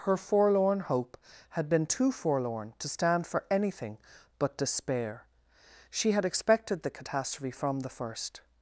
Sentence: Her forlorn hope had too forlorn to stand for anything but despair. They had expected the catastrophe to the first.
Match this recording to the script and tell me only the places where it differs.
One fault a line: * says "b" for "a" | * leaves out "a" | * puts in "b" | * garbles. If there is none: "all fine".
* puts in "been"
* says "She" for "They"
* says "from" for "to"